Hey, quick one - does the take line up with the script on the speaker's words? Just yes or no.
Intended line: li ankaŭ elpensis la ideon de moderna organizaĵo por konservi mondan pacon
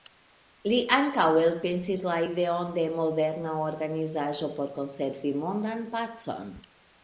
yes